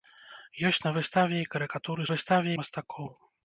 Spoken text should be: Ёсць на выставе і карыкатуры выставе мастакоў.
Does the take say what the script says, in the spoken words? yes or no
yes